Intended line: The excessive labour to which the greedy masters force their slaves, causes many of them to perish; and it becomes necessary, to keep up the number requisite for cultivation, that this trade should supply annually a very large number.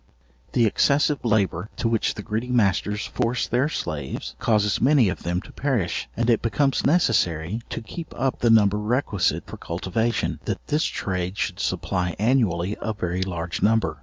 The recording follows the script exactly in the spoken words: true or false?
true